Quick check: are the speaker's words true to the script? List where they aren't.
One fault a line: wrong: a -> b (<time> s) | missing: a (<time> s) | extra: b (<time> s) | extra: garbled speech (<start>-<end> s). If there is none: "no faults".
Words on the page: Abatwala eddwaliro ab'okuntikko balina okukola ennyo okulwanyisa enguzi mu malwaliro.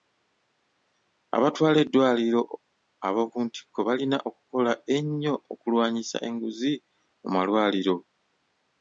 no faults